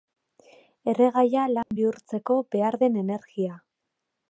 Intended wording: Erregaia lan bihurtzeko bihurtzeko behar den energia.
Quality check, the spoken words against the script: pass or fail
fail